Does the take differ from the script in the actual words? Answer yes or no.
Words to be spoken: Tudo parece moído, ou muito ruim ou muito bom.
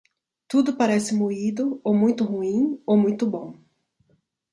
no